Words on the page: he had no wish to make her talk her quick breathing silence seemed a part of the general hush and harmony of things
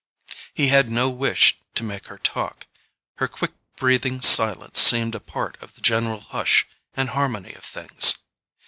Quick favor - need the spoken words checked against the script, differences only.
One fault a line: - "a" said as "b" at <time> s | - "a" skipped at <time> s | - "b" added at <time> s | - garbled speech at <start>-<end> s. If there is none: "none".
none